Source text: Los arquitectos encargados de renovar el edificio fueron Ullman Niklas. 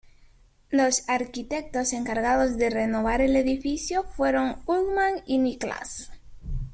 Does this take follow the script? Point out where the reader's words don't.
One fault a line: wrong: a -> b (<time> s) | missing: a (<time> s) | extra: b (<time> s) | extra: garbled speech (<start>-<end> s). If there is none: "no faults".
extra: y (5.3 s)